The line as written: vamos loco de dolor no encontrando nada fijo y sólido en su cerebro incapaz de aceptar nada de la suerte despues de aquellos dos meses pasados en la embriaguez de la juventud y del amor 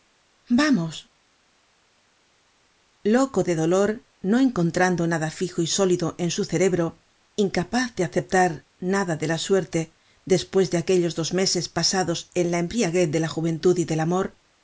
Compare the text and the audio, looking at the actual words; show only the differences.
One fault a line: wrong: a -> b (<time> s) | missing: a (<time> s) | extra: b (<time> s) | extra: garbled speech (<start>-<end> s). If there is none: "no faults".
no faults